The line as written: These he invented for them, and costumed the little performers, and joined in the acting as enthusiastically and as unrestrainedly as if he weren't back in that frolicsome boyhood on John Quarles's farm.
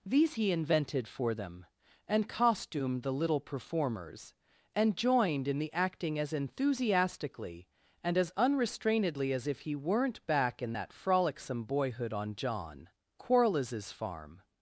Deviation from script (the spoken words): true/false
false